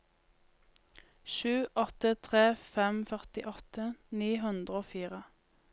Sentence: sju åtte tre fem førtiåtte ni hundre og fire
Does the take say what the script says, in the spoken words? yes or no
yes